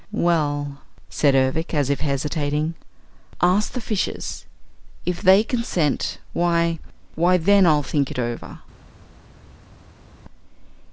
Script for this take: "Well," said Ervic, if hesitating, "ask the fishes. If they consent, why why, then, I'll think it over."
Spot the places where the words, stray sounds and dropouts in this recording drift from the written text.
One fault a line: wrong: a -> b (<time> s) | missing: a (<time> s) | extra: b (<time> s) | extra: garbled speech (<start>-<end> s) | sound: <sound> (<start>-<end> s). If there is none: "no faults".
extra: as (1.8 s)